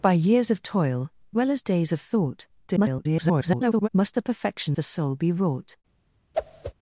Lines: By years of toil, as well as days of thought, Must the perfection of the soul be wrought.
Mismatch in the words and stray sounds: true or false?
true